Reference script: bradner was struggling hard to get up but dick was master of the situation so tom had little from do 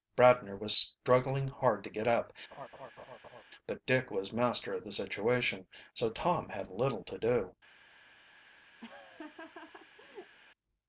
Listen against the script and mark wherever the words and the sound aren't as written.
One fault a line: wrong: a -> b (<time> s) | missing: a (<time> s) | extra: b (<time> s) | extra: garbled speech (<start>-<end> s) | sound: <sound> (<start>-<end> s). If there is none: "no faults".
sound: laugh (2.5-3.4 s)
wrong: from -> to (7.0 s)
sound: laugh (8.8-10.4 s)